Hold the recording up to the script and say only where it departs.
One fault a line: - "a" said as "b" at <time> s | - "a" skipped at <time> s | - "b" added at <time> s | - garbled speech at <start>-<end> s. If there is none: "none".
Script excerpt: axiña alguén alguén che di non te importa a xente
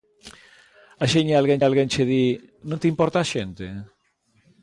none